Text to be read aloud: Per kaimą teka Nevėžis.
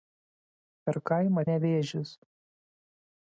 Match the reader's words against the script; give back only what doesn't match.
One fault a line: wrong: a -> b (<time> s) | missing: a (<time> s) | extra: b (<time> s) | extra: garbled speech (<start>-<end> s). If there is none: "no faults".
missing: teka (1.4 s)